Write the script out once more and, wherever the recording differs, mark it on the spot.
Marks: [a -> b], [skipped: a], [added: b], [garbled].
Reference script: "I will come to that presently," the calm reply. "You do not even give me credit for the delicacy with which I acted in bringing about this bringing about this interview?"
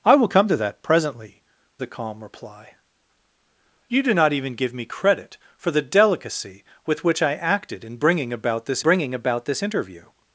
"I will come to that presently," the calm reply. "You do not even give me credit for the delicacy with which I acted in bringing about this bringing about this interview?"